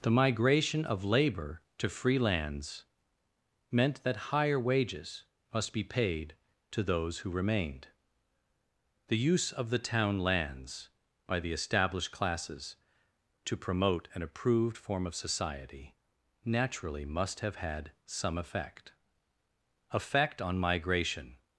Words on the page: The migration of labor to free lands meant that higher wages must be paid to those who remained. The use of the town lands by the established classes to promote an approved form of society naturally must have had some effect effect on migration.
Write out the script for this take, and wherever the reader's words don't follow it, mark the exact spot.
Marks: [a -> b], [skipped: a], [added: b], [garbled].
The migration of labor to free lands meant that higher wages must be paid to those who remained. The use of the town lands by the established classes to promote an approved form of society naturally must have had some effect effect on migration.